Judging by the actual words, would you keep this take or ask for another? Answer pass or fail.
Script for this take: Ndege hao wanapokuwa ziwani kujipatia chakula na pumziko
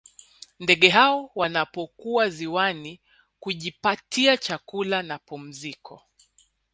pass